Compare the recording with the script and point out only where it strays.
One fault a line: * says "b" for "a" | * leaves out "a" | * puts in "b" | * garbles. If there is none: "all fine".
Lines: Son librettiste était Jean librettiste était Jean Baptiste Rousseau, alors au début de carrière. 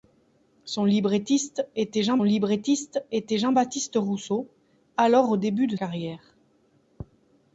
all fine